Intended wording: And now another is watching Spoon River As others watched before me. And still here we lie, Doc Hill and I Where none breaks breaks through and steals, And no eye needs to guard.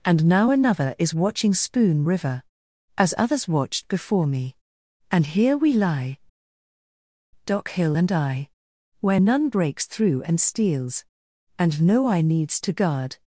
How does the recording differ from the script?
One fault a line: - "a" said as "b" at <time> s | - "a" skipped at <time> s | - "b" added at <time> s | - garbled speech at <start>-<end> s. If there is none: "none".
- "still" skipped at 5.3 s
- "breaks" skipped at 9.9 s